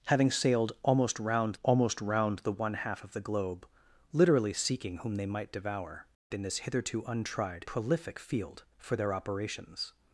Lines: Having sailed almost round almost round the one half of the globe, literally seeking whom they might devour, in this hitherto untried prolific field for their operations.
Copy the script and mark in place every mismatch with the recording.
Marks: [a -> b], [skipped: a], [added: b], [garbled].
Having sailed almost round almost round the one half of the globe, literally seeking whom they might devour, in this hitherto untried prolific field for their operations.